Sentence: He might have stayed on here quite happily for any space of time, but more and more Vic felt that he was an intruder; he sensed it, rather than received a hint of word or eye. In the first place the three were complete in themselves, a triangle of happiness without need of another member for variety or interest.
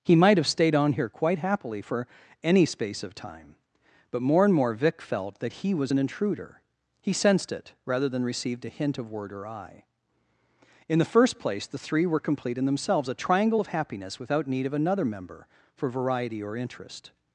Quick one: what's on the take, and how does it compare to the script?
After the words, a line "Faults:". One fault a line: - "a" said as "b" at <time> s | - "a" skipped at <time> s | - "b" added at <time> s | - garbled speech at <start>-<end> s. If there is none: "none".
He might have stayed on here quite happily for any space of time, but more and more Vic felt that he was an intruder; he sensed it, rather than received a hint of word or eye. In the first place the three were complete in themselves, a triangle of happiness without need of another member for variety or interest.
Faults:
none